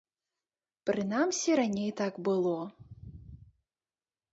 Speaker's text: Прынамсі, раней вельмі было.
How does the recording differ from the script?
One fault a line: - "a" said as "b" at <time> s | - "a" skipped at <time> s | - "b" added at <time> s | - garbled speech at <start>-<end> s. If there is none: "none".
- "вельмі" said as "так" at 2.0 s